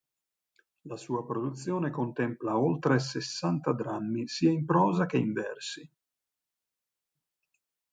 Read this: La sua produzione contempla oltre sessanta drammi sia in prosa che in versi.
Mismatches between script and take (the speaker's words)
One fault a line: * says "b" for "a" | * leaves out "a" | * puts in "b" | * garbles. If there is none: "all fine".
all fine